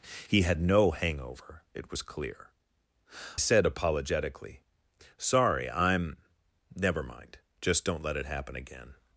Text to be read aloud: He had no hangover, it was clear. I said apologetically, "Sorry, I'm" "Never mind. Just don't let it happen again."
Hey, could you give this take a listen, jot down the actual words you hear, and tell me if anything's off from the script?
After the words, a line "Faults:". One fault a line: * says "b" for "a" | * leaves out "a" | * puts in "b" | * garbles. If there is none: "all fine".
He had no hangover, it was clear. said apologetically, "Sorry, I'm" "Never mind. Just don't let it happen again."
Faults:
* leaves out "I"